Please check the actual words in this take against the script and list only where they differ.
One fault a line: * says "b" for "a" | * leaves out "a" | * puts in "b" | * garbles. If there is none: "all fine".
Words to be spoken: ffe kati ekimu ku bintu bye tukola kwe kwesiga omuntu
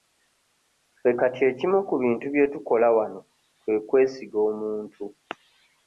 * puts in "wano"